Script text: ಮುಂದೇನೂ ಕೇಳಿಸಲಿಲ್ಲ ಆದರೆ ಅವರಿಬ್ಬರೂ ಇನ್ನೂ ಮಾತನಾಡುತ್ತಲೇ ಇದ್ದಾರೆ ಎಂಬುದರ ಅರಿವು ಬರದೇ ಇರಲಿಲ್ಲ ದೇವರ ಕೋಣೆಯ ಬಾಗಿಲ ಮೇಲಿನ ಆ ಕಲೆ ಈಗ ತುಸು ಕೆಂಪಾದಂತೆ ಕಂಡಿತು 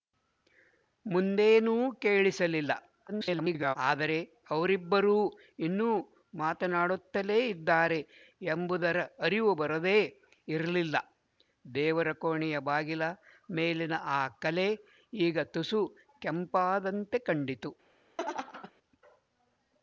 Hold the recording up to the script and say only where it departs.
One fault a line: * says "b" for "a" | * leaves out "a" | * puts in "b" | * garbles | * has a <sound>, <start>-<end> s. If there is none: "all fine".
* garbles
* has a laugh, 18.2-18.7 s